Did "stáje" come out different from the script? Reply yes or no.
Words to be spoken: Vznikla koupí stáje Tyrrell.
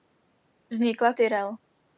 yes